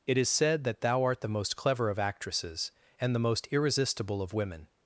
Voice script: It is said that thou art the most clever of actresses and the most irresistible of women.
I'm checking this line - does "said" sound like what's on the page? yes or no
yes